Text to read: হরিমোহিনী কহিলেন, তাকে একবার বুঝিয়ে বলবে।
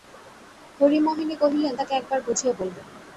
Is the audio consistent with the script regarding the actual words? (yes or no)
yes